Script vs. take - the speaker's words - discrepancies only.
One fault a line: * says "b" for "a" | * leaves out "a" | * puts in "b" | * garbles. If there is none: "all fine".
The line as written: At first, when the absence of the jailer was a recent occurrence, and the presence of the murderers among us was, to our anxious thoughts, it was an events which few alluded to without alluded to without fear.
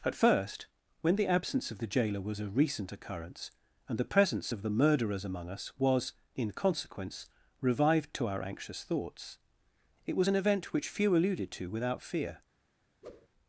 * puts in "in consequence revived"
* says "event" for "events"
* leaves out "alluded to without"